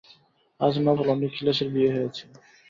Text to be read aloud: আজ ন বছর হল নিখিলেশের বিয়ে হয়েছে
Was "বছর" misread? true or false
true